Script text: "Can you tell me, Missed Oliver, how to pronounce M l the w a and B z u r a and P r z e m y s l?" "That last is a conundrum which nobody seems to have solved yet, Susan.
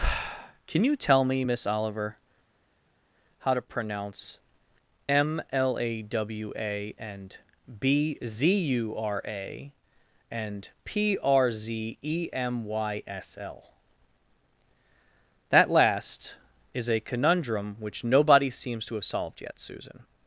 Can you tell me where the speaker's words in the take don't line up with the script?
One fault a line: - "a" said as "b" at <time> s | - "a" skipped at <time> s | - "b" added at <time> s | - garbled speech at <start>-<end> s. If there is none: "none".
- "Missed" said as "Miss" at 1.4 s
- "the" said as "a" at 5.8 s